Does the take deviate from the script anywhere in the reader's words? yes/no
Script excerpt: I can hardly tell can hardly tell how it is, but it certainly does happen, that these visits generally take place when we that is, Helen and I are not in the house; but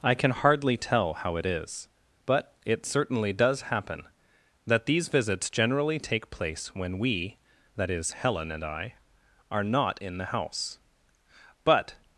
yes